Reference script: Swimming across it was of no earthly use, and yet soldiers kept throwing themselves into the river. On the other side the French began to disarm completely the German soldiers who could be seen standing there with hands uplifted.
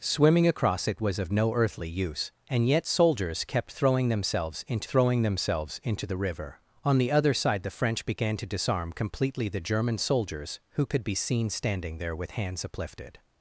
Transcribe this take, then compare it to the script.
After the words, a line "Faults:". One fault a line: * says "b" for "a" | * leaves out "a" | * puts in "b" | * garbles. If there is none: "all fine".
Swimming across it was of no earthly use, and yet soldiers kept throwing themselves into throwing themselves into the river. On the other side the French began to disarm completely the German soldiers who could be seen standing there with hands uplifted.
Faults:
* puts in "throwing themselves into"